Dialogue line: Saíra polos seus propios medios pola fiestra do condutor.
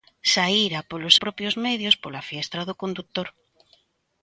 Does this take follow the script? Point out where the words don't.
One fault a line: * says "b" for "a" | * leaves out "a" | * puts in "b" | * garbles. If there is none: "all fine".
* leaves out "seus"